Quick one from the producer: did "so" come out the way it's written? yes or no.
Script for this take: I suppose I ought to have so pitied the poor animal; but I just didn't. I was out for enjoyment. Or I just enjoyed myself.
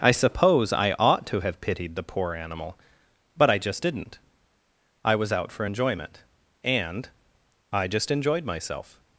no